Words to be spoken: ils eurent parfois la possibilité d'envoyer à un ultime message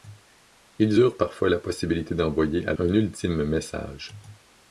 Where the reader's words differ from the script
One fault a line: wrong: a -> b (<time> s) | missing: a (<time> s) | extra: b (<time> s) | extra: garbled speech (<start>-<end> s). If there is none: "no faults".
no faults